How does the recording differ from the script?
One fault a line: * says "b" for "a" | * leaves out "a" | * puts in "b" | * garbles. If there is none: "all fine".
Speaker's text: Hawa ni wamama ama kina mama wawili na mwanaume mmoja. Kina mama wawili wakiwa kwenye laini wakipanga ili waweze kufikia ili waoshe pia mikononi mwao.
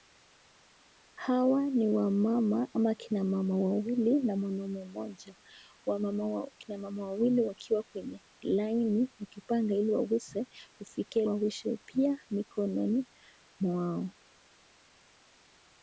* leaves out "ili"